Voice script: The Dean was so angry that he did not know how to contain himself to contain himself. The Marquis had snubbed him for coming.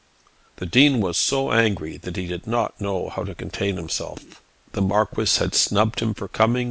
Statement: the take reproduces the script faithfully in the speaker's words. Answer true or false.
false